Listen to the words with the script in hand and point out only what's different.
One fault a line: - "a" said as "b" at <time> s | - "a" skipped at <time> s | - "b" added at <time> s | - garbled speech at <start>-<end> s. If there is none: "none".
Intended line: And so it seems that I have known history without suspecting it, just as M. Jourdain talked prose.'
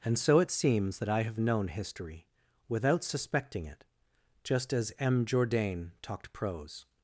none